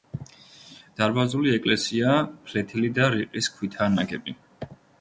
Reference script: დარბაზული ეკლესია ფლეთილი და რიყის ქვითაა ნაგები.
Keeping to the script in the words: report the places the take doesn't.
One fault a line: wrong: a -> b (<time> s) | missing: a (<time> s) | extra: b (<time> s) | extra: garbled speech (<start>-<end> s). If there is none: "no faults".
no faults